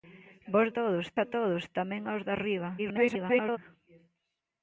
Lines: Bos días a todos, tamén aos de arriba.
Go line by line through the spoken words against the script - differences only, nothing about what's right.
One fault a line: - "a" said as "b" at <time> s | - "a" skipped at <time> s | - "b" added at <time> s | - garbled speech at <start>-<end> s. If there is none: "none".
- "días" said as "todos" at 0.8 s
- garbled speech at 2.8-3.6 s